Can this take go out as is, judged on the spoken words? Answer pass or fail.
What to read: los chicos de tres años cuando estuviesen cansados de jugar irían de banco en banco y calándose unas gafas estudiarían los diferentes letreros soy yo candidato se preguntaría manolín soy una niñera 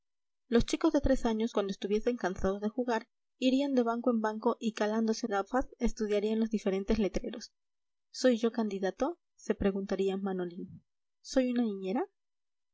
fail